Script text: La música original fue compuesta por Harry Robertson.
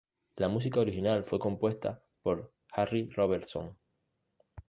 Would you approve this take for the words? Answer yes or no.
yes